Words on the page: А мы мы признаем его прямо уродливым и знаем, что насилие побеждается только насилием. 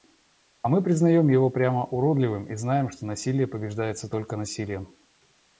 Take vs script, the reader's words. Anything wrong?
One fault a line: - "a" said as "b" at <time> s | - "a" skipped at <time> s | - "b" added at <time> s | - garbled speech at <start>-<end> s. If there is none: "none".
- "мы" skipped at 0.8 s